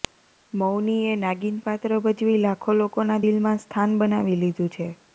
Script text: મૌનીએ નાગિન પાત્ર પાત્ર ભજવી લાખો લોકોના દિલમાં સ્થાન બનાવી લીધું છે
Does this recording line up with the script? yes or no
no